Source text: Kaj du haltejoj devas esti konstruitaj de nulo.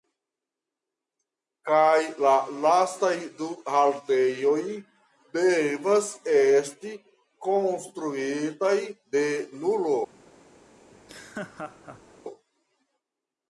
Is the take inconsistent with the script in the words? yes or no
yes